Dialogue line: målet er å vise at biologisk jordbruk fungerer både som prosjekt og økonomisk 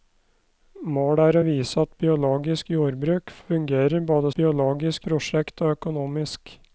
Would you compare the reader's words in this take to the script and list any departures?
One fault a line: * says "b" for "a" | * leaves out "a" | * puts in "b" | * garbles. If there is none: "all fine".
* says "biologisk" for "som"